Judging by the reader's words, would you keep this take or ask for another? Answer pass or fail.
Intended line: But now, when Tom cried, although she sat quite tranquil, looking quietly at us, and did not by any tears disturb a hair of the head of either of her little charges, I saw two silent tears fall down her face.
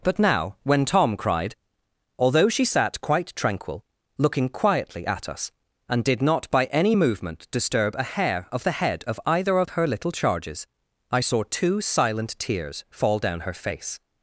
fail